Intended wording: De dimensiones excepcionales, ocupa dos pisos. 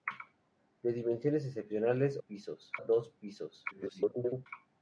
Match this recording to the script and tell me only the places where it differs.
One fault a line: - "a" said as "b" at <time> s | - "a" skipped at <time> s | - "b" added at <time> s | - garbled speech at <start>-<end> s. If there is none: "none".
- "ocupa" said as "pisos" at 2.2 s
- garbled speech at 3.7-4.5 s